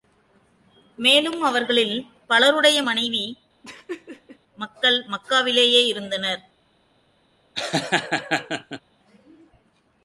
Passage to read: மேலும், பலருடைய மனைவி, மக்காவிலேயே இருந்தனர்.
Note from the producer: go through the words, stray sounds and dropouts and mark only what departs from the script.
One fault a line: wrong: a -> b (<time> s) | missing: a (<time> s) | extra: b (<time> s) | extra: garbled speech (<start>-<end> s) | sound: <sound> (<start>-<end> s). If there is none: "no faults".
extra: அவர்களில் (1.4 s)
sound: laugh (3.6-4.4 s)
extra: மக்கள் (4.6 s)
sound: laugh (7.6-8.8 s)